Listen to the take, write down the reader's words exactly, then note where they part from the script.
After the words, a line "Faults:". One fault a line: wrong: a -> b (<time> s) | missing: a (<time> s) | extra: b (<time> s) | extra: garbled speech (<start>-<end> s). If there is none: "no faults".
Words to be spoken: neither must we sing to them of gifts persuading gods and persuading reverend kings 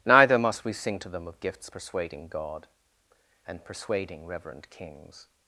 neither must we sing to them of gifts persuading god and persuading reverend kings
Faults:
wrong: gods -> god (2.3 s)